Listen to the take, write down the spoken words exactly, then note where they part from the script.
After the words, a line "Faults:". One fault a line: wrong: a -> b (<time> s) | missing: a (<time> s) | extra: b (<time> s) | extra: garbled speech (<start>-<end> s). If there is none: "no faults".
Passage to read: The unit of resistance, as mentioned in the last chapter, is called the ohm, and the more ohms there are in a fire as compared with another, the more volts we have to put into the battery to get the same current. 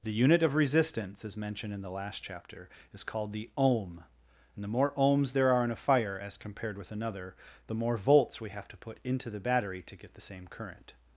The unit of resistance, as mentioned in the last chapter, is called the ohm, and the more ohms there are in a fire as compared with another, the more volts we have to put into the battery to get the same current.
Faults:
no faults